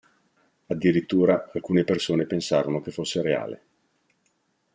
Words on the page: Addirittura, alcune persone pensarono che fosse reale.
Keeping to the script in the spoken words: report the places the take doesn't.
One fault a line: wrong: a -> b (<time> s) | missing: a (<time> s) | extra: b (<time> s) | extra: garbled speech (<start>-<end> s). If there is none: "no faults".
no faults